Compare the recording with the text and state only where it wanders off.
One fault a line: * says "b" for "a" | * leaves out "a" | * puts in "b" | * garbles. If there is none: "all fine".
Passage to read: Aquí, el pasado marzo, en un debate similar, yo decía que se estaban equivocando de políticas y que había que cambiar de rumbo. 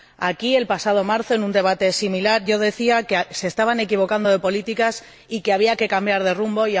all fine